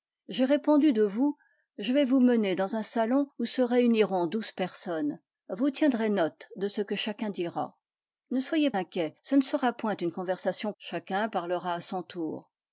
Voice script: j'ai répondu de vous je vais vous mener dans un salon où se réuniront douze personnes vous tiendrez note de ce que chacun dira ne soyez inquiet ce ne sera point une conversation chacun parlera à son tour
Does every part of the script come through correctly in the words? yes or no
yes